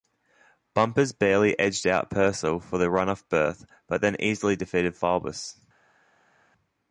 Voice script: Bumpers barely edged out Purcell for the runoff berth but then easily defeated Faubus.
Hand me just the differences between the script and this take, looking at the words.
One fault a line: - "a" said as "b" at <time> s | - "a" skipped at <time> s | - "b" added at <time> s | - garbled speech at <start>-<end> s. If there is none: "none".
none